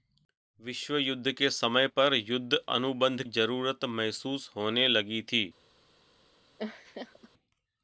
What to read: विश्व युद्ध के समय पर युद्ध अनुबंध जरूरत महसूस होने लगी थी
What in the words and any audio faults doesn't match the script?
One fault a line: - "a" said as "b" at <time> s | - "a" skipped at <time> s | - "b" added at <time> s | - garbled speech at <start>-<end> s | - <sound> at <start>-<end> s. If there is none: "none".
- laugh at 6.6-7.3 s